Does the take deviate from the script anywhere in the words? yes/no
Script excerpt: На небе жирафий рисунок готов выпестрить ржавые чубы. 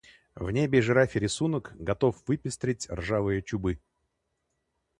yes